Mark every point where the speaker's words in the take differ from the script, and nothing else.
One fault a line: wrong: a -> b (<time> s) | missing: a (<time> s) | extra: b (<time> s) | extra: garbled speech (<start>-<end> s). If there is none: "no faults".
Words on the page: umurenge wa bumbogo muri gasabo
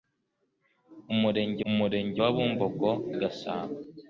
extra: umurenge (1.7 s)
missing: muri (2.9 s)